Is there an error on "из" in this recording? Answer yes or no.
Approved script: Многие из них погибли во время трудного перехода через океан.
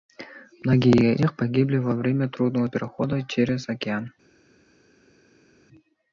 yes